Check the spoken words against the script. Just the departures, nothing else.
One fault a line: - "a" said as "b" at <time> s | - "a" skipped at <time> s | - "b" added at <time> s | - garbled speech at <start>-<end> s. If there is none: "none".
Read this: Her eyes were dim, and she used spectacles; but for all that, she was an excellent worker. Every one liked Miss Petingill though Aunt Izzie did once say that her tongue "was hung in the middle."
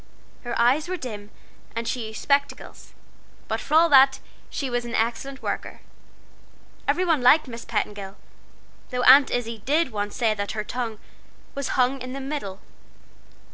none